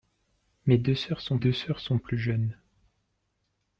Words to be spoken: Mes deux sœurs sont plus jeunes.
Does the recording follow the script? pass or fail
fail